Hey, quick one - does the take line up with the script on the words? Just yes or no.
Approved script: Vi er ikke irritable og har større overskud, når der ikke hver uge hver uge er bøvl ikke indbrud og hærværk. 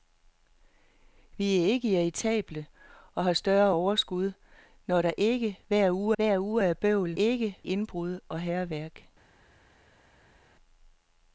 yes